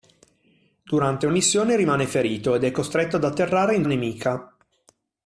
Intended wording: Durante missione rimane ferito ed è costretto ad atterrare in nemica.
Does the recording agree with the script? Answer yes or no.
yes